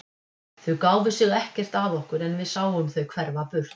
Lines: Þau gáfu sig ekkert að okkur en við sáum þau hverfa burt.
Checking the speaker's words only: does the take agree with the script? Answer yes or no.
yes